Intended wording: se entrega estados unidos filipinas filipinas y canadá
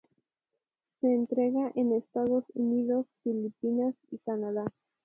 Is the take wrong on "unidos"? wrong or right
right